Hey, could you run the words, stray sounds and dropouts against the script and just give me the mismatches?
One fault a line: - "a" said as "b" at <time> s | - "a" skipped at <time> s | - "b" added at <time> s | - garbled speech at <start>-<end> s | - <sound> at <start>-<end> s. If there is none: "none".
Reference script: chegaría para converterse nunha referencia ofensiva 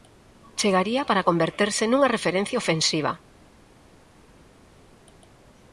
none